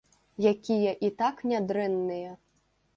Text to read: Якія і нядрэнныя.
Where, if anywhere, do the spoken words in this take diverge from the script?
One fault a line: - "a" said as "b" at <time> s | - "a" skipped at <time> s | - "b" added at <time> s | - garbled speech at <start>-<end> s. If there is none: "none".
- "так" added at 1.2 s